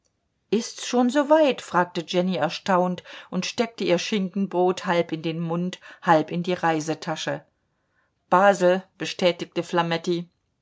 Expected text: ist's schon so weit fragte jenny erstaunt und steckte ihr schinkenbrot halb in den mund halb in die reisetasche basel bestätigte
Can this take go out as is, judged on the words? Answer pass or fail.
pass